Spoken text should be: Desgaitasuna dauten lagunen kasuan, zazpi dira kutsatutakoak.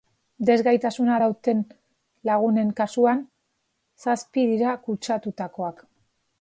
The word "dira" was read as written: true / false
true